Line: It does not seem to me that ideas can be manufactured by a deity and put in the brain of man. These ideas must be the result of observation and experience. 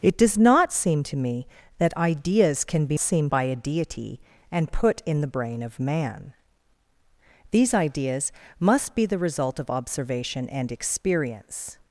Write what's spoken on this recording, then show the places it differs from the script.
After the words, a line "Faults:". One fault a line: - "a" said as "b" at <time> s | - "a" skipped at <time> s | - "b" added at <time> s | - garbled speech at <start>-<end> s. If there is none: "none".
It does not seem to me that ideas can be seem by a deity and put in the brain of man. These ideas must be the result of observation and experience.
Faults:
- "manufactured" said as "seem" at 3.0 s